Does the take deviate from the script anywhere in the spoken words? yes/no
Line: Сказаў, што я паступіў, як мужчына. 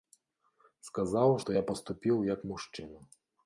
no